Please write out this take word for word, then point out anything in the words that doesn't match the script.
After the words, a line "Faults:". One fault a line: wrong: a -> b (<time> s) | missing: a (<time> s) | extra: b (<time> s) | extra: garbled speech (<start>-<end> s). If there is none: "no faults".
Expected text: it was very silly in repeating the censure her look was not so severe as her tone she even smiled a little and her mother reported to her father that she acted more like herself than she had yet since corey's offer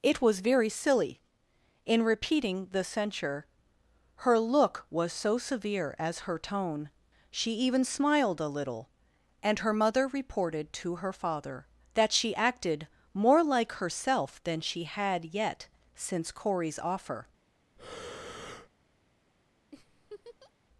it was very silly in repeating the censure her look was so severe as her tone she even smiled a little and her mother reported to her father that she acted more like herself than she had yet since corey's offer
Faults:
missing: not (5.1 s)